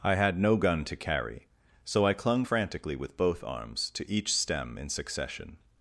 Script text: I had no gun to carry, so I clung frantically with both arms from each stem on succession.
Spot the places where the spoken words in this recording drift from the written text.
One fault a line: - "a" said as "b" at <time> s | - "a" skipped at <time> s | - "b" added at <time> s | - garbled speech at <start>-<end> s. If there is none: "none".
- "from" said as "to" at 3.9 s
- "on" said as "in" at 4.8 s